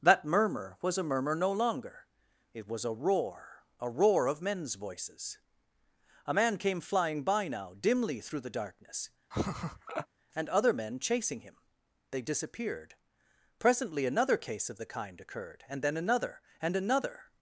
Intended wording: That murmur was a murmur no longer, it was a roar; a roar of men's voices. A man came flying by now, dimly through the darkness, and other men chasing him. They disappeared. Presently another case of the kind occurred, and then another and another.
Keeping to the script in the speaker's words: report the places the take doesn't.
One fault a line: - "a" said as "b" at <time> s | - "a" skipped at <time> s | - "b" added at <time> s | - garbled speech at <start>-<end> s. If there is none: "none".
none